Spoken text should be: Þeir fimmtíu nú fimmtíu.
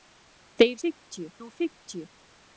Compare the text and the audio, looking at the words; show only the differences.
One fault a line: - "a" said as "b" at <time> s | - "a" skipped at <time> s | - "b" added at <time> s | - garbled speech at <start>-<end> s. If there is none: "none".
none